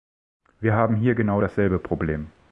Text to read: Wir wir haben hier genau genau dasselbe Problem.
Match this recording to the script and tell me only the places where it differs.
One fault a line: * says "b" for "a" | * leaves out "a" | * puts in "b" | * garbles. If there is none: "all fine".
* leaves out "wir"
* leaves out "genau"